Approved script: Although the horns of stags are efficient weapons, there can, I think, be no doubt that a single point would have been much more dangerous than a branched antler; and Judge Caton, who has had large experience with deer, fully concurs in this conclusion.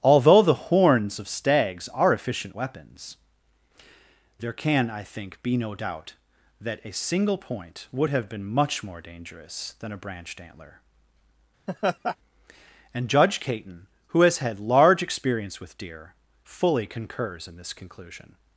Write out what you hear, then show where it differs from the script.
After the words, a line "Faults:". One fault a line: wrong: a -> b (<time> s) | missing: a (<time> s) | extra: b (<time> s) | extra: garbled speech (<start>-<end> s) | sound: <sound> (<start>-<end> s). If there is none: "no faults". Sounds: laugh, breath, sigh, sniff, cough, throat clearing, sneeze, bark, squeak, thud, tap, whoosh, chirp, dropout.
Although the horns of stags are efficient weapons, there can, I think, be no doubt that a single point would have been much more dangerous than a branched antler; and Judge Caton, who has had large experience with deer, fully concurs in this conclusion.
Faults:
sound: laugh (11.7-12.2 s)